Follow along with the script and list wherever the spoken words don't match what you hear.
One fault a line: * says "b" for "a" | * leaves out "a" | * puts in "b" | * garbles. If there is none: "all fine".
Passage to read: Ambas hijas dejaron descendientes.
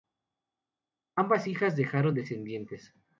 all fine